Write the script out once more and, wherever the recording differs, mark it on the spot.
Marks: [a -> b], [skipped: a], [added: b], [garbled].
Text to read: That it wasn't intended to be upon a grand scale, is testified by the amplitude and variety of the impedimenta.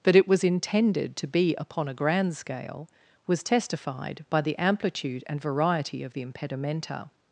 That it [wasn't -> was] intended to be upon a grand scale, [is -> was] testified by the amplitude and variety of the impedimenta.